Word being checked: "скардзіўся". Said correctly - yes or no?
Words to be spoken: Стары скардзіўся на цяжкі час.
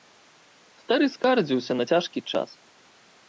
yes